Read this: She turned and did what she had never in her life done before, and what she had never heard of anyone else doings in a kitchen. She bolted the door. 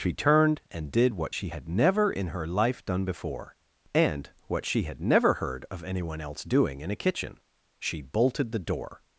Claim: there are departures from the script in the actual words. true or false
true